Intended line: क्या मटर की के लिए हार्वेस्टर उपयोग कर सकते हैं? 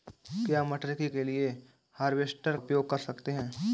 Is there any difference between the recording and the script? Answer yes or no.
no